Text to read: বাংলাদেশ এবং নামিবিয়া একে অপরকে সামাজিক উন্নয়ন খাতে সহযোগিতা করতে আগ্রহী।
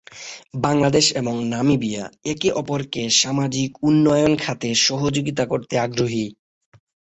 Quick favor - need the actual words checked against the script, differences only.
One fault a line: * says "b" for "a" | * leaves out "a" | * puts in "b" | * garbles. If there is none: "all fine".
all fine